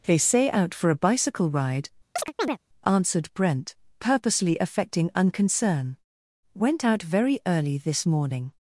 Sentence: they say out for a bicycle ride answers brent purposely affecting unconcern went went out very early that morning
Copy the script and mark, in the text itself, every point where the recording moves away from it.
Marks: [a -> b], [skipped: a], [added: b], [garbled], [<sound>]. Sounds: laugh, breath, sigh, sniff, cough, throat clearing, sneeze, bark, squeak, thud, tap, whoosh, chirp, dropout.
they say out for a bicycle ride [chirp] [answers -> answered] brent purposely affecting unconcern went [skipped: went] out very early [that -> this] morning